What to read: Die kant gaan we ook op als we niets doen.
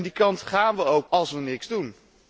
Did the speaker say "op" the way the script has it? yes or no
no